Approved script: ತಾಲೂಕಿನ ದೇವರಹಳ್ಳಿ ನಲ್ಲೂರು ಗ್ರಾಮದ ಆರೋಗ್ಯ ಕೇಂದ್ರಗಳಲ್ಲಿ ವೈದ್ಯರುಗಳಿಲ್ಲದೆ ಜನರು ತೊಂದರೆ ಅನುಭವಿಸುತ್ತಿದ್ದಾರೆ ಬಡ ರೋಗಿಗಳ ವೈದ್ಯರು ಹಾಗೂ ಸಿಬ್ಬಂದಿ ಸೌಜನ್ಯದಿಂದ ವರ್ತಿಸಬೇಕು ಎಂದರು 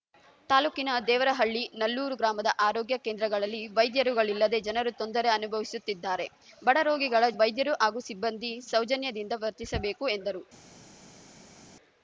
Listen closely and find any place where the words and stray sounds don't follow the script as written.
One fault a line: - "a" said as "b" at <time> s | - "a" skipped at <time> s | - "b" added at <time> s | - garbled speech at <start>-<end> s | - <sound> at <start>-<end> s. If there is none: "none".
none